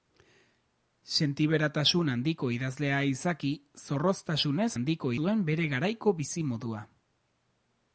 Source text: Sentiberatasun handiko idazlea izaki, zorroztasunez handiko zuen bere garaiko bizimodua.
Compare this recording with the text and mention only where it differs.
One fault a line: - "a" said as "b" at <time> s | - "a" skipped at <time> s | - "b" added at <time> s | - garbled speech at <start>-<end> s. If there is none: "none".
none